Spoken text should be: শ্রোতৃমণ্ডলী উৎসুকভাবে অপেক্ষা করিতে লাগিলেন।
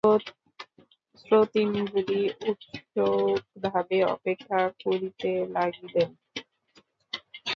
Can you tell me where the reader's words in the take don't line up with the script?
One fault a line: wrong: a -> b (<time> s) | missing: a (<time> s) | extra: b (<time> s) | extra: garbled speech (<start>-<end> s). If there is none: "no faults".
no faults